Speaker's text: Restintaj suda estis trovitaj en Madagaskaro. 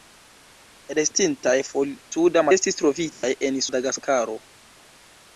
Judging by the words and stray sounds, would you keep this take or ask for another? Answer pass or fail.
fail